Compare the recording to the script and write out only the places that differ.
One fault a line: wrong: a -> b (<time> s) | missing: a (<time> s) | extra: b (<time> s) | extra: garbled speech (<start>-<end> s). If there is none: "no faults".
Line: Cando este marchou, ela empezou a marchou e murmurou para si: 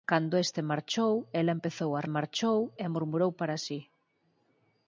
no faults